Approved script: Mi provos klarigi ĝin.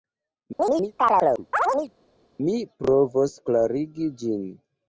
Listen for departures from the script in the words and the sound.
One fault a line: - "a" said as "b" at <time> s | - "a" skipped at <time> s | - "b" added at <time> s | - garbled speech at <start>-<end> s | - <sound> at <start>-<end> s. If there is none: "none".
- chirp at 0.6-1.9 s